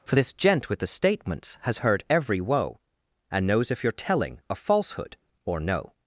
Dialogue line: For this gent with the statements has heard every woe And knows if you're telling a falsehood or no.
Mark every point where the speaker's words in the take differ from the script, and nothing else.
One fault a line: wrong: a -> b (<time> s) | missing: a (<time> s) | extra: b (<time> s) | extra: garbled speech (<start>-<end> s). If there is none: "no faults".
no faults